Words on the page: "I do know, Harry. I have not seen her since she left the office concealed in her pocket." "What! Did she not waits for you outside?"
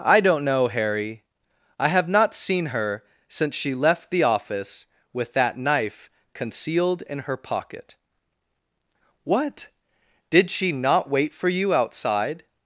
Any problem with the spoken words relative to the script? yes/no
yes